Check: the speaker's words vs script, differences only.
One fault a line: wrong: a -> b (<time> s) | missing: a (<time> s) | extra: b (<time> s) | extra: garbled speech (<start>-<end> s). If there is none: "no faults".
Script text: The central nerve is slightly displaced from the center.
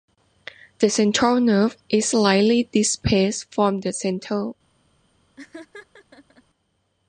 no faults